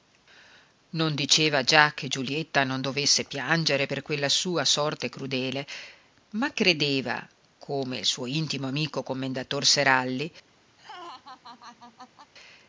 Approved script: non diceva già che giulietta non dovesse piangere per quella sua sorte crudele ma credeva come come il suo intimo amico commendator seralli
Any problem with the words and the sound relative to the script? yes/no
yes